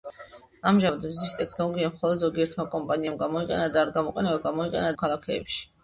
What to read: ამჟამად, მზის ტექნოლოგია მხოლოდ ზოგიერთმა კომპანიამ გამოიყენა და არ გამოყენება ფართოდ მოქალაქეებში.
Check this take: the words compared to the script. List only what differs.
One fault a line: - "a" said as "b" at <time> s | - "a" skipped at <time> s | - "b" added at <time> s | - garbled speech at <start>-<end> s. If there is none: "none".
- "ფართოდ" said as "გამოიყენა" at 4.5 s